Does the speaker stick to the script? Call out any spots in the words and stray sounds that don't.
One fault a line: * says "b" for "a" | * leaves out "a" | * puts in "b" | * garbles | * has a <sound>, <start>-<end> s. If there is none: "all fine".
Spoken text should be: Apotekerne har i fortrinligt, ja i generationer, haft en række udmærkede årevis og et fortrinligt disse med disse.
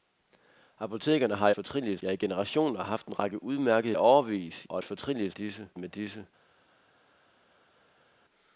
all fine